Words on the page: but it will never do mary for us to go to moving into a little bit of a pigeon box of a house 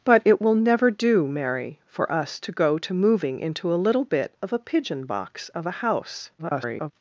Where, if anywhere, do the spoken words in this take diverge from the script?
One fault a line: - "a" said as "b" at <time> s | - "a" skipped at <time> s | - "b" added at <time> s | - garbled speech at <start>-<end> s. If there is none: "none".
- garbled speech at 6.4-6.9 s